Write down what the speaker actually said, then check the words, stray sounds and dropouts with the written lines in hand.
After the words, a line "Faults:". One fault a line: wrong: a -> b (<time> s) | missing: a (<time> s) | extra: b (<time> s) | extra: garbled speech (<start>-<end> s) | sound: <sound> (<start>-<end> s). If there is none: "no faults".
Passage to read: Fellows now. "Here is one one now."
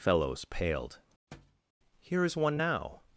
Fellows paled. "Here is one now."
Faults:
wrong: now -> paled (0.5 s)
sound: thud (1.3-1.6 s)
missing: one (2.6 s)